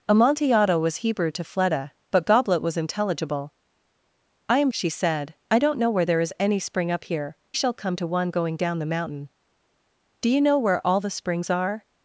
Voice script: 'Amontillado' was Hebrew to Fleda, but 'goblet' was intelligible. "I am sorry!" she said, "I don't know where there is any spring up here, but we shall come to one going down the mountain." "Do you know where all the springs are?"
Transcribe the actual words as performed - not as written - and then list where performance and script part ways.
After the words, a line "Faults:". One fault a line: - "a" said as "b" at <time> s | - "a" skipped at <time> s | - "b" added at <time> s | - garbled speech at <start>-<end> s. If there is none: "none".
'Amontillado' was Hebrew to Fleda, but 'goblet' was intelligible. "I am!" she said, "I don't know where there is any spring up here, shall come to one going down the mountain." "Do you know where all the springs are?"
Faults:
- "sorry" skipped at 4.7 s
- "but we" skipped at 7.4 s